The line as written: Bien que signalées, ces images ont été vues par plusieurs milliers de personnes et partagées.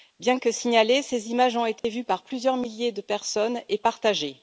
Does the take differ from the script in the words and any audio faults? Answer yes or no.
yes